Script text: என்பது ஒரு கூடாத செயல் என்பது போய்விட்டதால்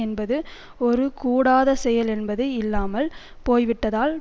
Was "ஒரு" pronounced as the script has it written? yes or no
yes